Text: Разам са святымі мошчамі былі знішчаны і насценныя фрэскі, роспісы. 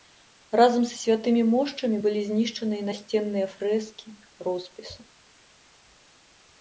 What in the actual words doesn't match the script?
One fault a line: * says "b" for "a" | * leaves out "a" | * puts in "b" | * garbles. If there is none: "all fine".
all fine